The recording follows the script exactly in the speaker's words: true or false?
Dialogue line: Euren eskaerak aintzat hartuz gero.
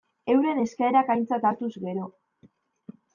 true